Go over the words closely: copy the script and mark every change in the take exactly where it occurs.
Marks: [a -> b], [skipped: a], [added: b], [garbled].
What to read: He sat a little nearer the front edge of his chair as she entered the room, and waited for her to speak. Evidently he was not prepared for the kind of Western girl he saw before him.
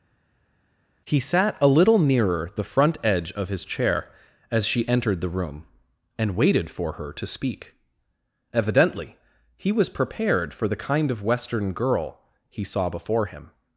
He sat a little nearer the front edge of his chair as she entered the room, and waited for her to speak. Evidently he was [skipped: not] prepared for the kind of Western girl he saw before him.